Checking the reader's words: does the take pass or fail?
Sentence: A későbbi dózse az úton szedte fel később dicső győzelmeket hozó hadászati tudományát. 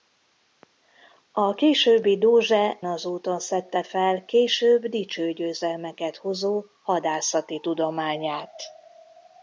pass